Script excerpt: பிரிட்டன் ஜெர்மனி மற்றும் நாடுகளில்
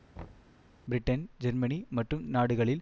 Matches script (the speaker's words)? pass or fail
pass